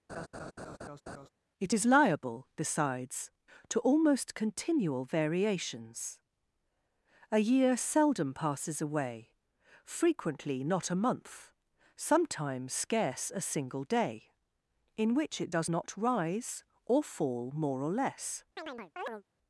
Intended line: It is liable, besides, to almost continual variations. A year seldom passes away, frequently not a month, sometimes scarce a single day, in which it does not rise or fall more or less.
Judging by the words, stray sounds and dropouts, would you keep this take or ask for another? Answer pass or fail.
fail